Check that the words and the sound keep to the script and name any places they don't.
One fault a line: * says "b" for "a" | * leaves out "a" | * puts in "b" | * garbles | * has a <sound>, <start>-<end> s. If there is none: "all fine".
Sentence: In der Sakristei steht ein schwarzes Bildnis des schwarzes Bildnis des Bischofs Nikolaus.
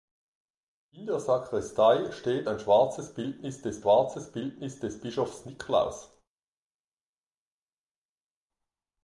all fine